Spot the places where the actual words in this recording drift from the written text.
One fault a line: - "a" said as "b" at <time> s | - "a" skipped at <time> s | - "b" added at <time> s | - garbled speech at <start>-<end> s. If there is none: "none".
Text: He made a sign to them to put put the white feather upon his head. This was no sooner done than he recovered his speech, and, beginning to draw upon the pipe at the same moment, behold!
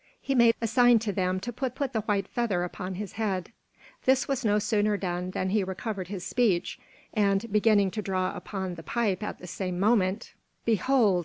none